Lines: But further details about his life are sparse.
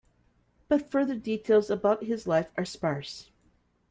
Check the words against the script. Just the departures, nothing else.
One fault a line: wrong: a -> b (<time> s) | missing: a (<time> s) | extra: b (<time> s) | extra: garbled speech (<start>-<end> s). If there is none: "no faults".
no faults